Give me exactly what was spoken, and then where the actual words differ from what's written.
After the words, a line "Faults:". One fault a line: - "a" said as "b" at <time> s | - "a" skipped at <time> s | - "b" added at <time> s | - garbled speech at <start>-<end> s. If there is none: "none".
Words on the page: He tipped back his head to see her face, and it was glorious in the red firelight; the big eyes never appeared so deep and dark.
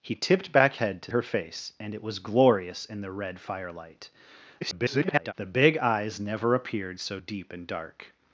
He tipped back head to her face, and it was glorious in the red firelight; [garbled] the big eyes never appeared so deep and dark.
Faults:
- "his" skipped at 0.8 s
- "see" skipped at 1.1 s
- garbled speech at 4.6-5.3 s